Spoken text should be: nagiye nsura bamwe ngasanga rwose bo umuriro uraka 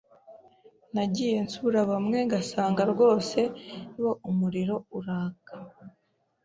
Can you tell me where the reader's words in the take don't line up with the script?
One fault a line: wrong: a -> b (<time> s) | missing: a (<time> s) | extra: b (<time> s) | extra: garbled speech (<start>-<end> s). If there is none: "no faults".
no faults